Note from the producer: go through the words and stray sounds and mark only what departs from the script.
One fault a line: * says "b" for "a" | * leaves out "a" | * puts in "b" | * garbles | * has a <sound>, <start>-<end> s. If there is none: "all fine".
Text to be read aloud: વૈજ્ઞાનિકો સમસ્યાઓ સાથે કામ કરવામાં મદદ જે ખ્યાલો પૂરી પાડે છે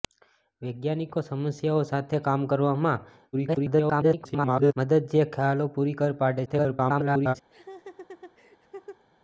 * garbles
* garbles
* has a laugh, 7.5-9.0 s